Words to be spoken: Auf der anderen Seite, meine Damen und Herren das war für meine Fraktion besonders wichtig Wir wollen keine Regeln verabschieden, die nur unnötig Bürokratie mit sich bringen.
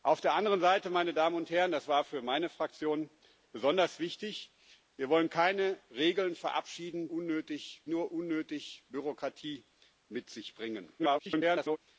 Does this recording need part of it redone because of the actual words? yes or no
yes